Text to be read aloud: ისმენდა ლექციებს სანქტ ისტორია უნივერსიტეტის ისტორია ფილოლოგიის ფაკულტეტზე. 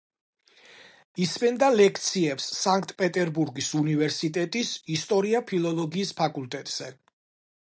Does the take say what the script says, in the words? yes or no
no